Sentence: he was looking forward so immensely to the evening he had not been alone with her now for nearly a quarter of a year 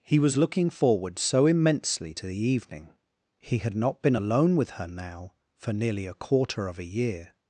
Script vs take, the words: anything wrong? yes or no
no